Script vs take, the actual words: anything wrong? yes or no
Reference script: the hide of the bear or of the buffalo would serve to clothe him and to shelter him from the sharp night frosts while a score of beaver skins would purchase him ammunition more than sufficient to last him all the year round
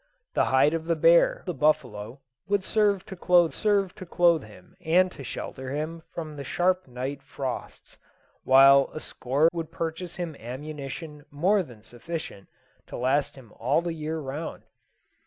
yes